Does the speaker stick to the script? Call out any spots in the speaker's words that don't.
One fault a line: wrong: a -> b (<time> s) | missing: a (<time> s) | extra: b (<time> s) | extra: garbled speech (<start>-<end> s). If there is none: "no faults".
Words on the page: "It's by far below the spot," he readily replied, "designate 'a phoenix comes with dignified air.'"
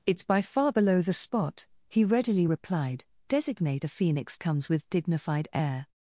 no faults